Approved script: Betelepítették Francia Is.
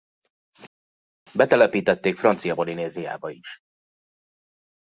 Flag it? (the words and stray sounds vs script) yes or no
yes